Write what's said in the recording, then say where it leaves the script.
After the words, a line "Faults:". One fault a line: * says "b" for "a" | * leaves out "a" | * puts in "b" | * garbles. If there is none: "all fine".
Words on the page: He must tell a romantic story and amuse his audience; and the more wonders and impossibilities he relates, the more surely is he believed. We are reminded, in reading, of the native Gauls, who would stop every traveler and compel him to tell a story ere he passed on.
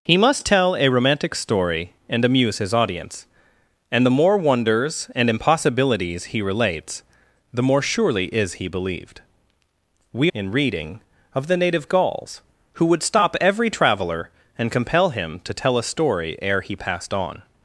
He must tell a romantic story and amuse his audience; and the more wonders and impossibilities he relates, the more surely is he believed. We in reading, of the native Gauls, who would stop every traveler and compel him to tell a story ere he passed on.
Faults:
* leaves out "are reminded"